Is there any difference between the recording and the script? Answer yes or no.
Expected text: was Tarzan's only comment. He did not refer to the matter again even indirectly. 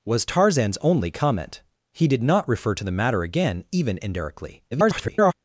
yes